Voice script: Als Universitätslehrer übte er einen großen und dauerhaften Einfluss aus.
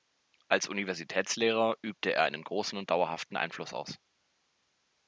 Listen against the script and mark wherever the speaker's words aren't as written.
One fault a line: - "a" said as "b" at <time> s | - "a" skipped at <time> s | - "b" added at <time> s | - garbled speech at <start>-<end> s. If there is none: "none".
none